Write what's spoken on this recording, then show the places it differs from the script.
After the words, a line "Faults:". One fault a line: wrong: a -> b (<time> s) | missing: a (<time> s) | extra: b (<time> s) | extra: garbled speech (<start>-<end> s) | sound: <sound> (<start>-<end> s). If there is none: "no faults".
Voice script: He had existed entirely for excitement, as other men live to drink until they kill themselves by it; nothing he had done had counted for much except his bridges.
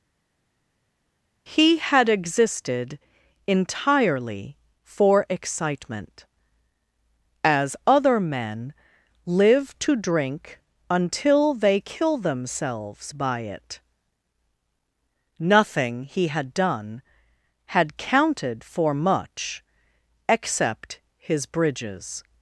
He had existed entirely for excitement, as other men live to drink until they kill themselves by it; nothing he had done had counted for much except his bridges.
Faults:
no faults